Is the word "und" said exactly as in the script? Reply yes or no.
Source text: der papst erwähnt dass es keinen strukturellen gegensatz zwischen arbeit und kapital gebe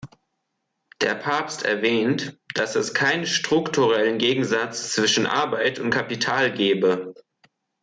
yes